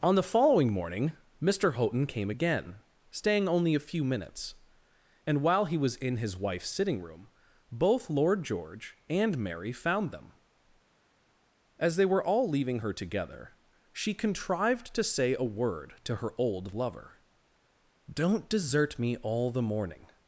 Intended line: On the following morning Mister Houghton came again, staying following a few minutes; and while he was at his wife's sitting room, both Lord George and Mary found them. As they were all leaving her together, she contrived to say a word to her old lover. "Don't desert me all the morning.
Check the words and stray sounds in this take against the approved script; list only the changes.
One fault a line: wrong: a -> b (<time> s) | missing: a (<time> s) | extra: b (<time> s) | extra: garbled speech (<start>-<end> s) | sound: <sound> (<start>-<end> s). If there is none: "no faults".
wrong: following -> only (3.5 s)
wrong: at -> in (6.0 s)